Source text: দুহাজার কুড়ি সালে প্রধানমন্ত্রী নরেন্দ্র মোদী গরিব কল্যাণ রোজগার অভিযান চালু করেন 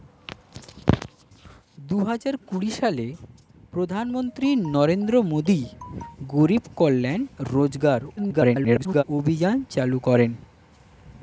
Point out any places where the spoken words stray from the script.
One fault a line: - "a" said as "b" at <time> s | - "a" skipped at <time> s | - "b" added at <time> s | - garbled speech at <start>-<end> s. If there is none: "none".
- garbled speech at 8.2-9.0 s